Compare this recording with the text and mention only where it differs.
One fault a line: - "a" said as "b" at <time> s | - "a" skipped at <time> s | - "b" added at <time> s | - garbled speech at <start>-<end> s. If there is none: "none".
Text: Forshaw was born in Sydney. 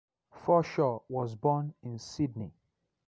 none